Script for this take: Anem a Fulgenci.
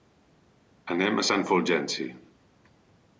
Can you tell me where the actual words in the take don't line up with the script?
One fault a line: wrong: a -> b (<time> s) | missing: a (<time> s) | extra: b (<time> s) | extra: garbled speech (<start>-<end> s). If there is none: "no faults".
extra: Sant (1.2 s)